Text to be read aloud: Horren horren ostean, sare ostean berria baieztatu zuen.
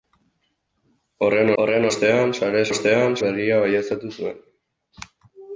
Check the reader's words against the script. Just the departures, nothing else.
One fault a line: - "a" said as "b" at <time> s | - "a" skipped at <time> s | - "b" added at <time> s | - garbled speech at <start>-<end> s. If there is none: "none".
none